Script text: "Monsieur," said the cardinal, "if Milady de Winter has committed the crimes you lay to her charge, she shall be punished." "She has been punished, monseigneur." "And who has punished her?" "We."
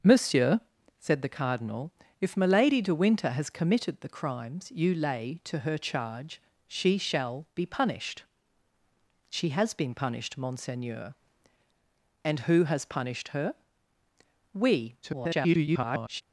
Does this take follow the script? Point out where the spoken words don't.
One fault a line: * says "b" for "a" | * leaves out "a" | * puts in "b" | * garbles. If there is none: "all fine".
* garbles